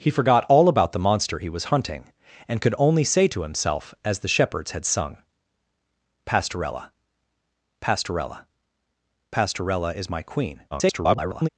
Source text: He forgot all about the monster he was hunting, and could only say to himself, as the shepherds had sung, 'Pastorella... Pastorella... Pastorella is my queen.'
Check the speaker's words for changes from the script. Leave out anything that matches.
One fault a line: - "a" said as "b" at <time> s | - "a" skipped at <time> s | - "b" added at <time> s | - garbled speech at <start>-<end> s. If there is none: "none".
- garbled speech at 10.7-11.5 s